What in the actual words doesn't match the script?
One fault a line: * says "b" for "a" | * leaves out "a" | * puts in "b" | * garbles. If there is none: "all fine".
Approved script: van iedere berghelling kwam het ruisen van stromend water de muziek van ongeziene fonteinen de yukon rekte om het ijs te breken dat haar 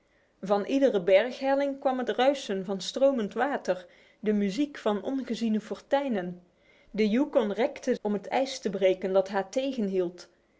all fine